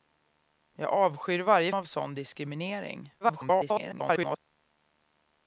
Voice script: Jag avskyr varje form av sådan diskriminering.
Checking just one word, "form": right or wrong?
wrong